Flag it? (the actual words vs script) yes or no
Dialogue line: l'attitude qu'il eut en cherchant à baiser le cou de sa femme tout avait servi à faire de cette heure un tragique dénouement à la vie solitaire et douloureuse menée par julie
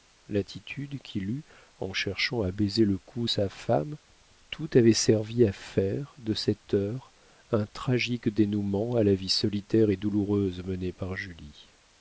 yes